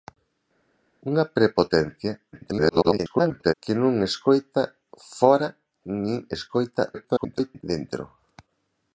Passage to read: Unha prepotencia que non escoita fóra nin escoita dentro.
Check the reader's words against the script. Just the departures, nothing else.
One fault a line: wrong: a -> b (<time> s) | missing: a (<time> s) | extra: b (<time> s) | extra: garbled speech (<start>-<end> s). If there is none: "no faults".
extra: garbled speech (2.3-3.5 s)
extra: garbled speech (6.9-7.6 s)